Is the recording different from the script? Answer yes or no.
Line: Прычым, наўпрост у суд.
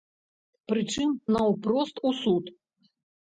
no